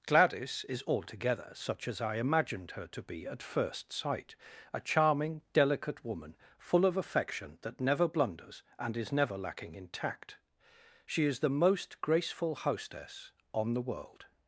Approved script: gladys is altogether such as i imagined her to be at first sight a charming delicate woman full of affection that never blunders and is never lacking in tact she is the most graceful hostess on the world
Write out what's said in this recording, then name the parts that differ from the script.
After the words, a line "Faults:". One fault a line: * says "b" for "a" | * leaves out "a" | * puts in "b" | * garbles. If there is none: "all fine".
gladys is altogether such as i imagined her to be at first sight a charming delicate woman full of affection that never blunders and is never lacking in tact she is the most graceful hostess on the world
Faults:
all fine